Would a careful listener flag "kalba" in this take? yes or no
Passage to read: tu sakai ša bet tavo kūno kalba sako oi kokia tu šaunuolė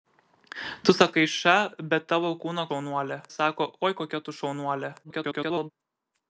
yes